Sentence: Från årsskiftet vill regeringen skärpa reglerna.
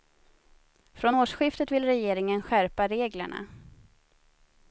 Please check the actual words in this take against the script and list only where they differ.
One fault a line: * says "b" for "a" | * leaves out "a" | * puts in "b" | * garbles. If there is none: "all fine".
all fine